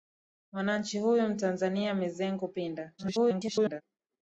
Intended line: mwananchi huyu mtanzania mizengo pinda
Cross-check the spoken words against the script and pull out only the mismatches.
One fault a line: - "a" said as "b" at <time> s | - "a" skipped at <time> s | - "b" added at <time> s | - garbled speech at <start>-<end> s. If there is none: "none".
- garbled speech at 3.0-3.8 s